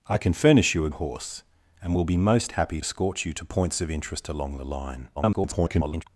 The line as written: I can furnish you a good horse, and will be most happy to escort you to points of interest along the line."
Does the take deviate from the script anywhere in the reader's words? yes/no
yes